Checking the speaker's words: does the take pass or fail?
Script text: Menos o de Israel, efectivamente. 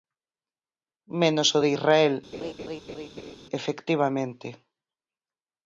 pass